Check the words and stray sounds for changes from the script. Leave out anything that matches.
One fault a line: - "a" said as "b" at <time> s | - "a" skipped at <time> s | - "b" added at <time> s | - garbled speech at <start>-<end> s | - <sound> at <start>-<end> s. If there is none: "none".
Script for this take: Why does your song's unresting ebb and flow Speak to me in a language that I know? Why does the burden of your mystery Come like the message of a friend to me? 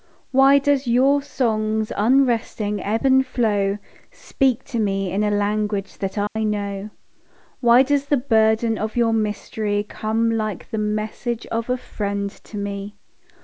- dropout at 6.3-6.4 s